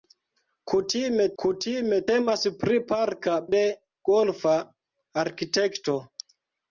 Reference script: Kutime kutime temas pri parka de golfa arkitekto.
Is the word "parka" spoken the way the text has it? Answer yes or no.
yes